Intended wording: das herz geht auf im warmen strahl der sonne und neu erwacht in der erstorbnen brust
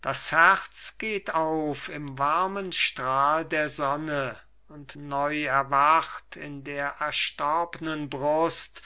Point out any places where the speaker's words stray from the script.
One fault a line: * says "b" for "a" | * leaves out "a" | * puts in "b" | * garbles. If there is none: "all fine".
all fine